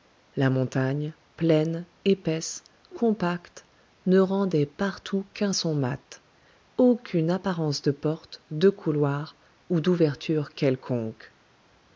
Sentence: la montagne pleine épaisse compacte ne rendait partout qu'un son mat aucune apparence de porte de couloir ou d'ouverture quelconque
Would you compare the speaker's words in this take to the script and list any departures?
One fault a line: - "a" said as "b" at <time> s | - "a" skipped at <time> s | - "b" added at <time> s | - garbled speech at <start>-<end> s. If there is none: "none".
none